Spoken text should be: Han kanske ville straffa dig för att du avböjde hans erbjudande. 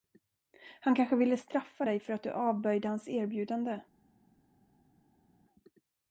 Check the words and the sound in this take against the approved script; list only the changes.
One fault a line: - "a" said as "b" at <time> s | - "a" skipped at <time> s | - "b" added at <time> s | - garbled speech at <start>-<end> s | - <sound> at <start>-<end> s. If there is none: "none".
none